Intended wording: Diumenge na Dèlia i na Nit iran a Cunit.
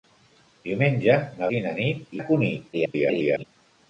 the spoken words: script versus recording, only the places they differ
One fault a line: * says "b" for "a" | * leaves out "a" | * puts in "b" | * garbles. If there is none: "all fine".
* leaves out "Dèlia"
* leaves out "iran"
* garbles